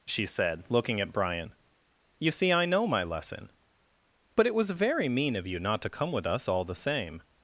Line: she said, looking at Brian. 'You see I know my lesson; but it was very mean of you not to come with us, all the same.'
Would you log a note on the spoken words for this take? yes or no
no